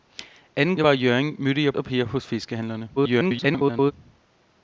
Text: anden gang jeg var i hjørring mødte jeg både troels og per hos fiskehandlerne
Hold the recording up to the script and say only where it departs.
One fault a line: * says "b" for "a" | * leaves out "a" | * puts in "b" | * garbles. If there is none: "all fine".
* leaves out "gang"
* leaves out "både troels"
* garbles